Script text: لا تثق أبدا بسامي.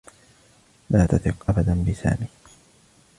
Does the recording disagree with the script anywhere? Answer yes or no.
no